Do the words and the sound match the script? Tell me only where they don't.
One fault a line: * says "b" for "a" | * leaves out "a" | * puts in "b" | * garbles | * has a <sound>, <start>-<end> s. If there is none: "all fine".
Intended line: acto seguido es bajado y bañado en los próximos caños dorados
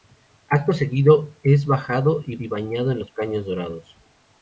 * puts in "y"
* leaves out "próximos"